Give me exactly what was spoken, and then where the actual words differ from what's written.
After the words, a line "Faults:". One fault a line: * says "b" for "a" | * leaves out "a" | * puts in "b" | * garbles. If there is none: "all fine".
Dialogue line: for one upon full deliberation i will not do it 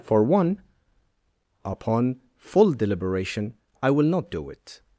for one upon full deliberation i will not do it
Faults:
all fine